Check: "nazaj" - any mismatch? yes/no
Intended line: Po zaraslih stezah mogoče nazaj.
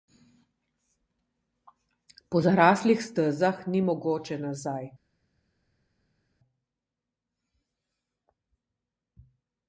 no